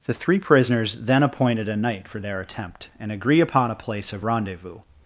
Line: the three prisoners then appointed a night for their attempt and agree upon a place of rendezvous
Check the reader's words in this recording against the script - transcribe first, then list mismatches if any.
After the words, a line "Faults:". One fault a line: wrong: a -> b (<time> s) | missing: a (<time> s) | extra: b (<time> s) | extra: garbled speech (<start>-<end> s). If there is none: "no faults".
the three prisoners then appointed a night for their attempt and agree upon a place of rendezvous
Faults:
no faults